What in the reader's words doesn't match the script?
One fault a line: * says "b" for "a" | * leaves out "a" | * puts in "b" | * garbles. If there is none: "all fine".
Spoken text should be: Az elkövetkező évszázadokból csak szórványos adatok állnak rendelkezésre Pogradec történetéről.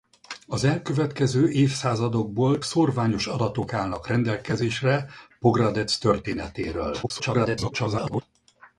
* leaves out "csak"
* garbles